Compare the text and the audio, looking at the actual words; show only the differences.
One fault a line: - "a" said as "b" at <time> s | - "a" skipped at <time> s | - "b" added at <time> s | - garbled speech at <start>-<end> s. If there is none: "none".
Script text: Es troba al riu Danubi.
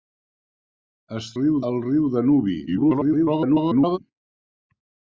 - "troba" said as "riu" at 1.4 s
- garbled speech at 2.7-4.0 s